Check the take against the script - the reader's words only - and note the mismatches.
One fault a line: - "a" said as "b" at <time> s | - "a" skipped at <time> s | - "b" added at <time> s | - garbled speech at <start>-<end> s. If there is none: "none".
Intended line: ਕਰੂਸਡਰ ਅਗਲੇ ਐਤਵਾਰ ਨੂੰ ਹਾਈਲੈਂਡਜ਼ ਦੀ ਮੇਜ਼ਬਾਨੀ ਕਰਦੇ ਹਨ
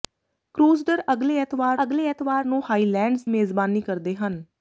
- "ਅਗਲੇ ਐਤਵਾਰ" added at 1.8 s
- "ਦੀ" skipped at 3.2 s